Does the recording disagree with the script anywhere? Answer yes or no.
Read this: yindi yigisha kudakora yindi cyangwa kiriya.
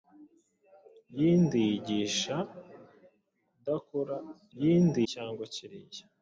no